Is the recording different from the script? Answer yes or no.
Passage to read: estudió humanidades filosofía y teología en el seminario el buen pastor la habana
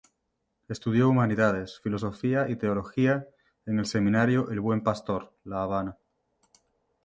no